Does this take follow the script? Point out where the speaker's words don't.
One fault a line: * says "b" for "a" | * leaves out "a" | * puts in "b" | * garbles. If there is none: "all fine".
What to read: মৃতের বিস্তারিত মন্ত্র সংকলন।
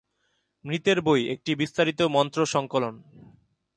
* puts in "বই একটি"